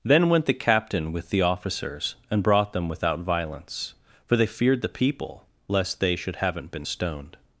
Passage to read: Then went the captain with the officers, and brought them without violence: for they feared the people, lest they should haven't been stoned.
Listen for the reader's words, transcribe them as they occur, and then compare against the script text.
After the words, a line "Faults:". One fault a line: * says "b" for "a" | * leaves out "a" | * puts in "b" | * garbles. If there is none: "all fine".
Then went the captain with the officers, and brought them without violence: for they feared the people, lest they should haven't been stoned.
Faults:
all fine